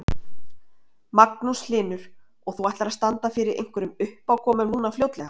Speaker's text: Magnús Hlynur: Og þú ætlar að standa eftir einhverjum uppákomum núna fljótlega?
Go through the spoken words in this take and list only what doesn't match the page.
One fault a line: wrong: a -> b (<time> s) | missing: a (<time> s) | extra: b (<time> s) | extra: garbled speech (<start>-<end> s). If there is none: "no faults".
wrong: eftir -> fyrir (3.3 s)